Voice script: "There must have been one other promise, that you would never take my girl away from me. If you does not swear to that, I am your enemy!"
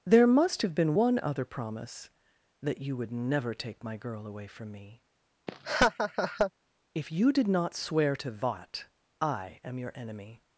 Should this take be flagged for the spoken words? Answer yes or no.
yes